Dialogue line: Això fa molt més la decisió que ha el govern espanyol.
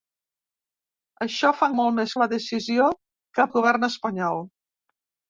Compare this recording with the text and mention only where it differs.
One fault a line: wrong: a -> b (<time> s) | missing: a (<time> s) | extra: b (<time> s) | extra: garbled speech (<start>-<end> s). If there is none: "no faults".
no faults